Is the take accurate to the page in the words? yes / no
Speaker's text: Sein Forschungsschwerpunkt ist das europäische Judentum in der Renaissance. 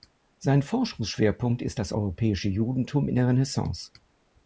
yes